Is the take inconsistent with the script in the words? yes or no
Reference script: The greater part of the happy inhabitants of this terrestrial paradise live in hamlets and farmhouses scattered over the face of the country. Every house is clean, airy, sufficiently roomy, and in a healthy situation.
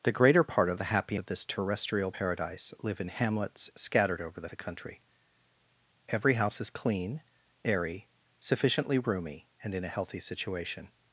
yes